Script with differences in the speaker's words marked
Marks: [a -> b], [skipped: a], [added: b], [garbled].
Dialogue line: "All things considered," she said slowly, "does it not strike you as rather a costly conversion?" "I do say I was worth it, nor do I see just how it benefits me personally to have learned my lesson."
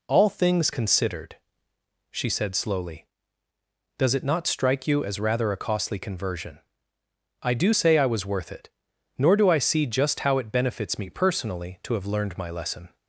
"All things considered," she said slowly, "does it not strike you as rather a costly conversion?" "I do say I was worth it, nor do I see just how it benefits me personally to have learned my lesson."